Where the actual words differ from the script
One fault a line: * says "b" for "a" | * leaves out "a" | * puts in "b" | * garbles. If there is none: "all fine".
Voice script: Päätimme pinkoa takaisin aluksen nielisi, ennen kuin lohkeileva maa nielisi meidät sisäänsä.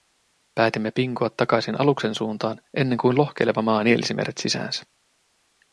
* says "suuntaan" for "nielisi"